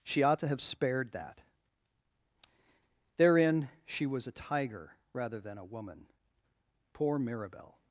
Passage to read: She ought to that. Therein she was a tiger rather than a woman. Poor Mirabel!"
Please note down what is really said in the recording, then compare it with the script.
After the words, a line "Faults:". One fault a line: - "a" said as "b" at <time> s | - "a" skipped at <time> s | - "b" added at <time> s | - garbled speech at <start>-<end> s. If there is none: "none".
She ought to have spared that. Therein she was a tiger rather than a woman. Poor Mirabel!"
Faults:
- "have spared" added at 0.5 s